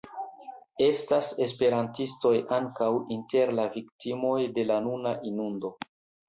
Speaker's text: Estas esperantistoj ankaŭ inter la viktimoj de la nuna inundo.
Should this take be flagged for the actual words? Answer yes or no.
no